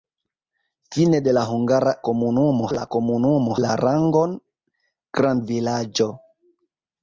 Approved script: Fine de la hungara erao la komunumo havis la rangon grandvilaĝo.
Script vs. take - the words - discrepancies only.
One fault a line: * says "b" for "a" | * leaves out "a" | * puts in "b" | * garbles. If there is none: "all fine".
* says "komunumo" for "erao"
* leaves out "havis"